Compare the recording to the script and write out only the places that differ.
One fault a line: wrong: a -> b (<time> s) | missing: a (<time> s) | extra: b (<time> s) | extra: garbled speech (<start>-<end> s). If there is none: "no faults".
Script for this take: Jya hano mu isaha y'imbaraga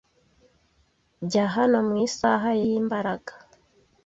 no faults